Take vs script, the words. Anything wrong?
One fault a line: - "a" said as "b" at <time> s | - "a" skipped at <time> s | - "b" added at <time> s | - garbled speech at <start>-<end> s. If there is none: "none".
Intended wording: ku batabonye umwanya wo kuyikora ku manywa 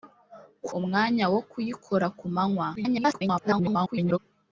- "batabonye" skipped at 0.7 s
- garbled speech at 2.8-4.2 s